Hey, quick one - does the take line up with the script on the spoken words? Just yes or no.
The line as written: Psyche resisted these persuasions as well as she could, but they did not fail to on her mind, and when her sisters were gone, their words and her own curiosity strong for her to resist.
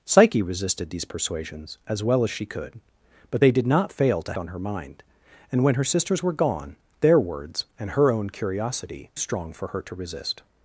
yes